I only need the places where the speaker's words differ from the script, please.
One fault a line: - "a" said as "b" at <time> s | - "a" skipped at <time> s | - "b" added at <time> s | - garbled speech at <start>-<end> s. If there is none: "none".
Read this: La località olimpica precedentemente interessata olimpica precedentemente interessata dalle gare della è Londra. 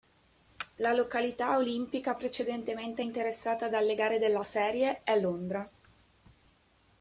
- "olimpica precedentemente interessata" skipped at 3.7 s
- "serie" added at 4.4 s